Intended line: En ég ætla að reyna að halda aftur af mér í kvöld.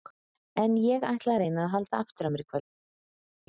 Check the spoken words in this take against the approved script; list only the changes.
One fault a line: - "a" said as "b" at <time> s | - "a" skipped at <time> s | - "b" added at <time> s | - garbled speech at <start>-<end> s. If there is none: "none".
none